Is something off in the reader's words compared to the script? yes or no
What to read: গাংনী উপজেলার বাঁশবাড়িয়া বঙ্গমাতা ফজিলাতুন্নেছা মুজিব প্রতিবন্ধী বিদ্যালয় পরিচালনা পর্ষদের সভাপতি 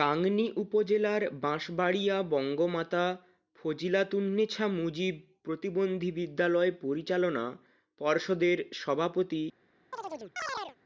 no